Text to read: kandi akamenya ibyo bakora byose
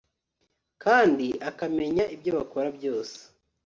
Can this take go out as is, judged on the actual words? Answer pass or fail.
pass